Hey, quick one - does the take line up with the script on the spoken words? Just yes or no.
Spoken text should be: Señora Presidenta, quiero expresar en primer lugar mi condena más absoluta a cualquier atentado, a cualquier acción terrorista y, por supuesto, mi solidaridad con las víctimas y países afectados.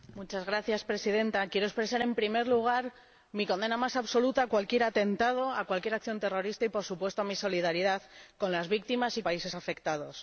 yes